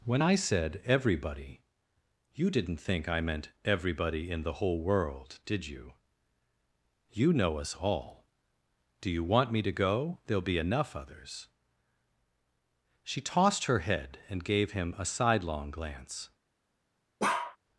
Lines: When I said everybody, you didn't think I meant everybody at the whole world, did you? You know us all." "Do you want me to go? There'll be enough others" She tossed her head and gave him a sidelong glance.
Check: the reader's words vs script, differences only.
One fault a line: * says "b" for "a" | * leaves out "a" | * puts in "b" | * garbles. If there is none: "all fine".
* says "in" for "at"